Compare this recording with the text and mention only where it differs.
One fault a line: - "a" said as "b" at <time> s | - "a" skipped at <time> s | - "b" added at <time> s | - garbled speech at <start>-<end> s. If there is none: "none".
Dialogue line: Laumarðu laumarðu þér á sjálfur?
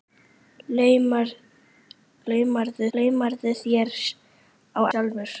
none